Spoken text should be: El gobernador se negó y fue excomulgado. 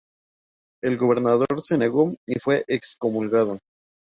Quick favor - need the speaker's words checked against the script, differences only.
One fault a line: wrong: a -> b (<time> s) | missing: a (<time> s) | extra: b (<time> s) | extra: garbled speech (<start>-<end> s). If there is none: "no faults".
no faults